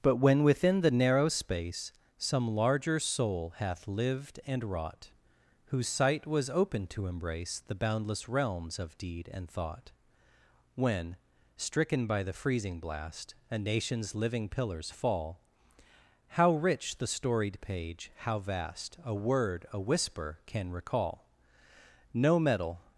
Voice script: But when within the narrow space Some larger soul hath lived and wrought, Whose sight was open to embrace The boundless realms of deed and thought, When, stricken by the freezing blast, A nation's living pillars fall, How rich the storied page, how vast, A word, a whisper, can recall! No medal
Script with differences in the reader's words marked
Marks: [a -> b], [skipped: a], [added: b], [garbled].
But when within the narrow space Some larger soul hath lived and wrought, Whose sight was open to embrace The boundless realms of deed and thought, When, stricken by the freezing blast, A nation's living pillars fall, How rich the storied page, how vast, A word, a whisper, can recall! No medal